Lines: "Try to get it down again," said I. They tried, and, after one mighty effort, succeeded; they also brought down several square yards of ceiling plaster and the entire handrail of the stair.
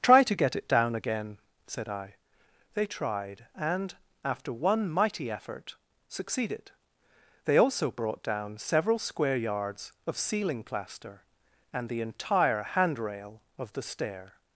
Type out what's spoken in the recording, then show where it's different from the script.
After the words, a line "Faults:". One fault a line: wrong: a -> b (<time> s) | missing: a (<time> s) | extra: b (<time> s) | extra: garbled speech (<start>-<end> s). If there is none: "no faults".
"Try to get it down again," said I. They tried, and, after one mighty effort, succeeded; they also brought down several square yards of ceiling plaster and the entire handrail of the stair.
Faults:
no faults